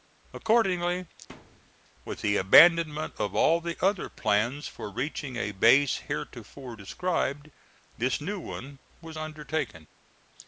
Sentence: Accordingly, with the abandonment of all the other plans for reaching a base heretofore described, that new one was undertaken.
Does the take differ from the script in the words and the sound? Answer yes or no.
yes